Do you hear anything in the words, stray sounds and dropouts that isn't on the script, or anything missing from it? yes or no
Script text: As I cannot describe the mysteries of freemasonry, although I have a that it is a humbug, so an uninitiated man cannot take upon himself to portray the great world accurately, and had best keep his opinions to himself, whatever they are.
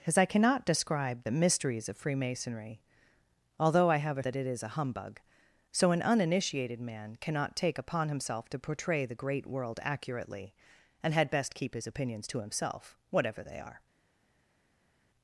no